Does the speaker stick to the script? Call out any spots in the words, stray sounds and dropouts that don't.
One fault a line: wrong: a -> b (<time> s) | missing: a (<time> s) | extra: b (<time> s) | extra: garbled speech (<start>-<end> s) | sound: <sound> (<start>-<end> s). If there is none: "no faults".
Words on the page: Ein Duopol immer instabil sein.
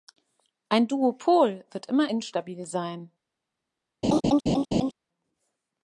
extra: wird (1.7 s)
sound: laugh (4.0-4.9 s)